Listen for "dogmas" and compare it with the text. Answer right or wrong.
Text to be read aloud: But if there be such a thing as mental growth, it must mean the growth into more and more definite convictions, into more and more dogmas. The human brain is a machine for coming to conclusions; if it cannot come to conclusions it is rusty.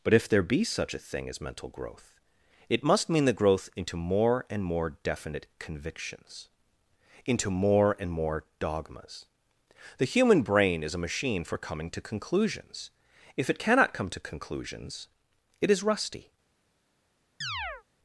right